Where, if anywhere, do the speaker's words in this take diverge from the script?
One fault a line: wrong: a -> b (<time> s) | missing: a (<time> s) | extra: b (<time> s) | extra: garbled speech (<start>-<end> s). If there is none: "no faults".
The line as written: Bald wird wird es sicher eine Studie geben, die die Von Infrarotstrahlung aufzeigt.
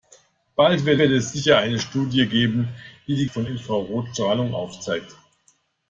no faults